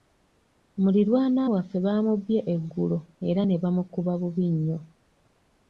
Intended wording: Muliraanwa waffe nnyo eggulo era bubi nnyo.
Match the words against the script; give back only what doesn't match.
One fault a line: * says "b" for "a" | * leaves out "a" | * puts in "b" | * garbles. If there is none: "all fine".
* says "baamubbye" for "nnyo"
* puts in "ne bamukuba"